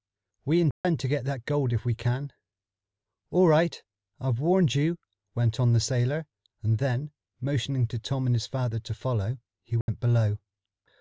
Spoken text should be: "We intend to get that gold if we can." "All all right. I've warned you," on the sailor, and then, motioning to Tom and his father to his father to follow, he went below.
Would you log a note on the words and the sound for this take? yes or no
yes